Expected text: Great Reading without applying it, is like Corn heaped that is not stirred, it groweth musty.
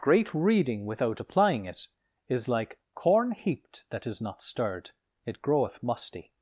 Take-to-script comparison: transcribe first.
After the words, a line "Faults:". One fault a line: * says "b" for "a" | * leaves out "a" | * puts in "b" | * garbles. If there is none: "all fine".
Great Reading without applying it, is like Corn heaped that is not stirred, it groweth musty.
Faults:
all fine